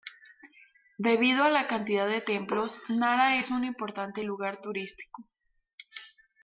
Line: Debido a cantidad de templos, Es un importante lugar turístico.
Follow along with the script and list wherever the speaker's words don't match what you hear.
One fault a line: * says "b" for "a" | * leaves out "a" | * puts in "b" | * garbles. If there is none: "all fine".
* puts in "la"
* puts in "Nara"